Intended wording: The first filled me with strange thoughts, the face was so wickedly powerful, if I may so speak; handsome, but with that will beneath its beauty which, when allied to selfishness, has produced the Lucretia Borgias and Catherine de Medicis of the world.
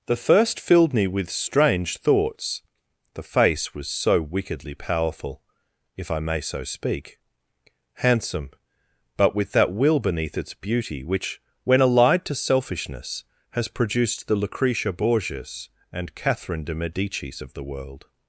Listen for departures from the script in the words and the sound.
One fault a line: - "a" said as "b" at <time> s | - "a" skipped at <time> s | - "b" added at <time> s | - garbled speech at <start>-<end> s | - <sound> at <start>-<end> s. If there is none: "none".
none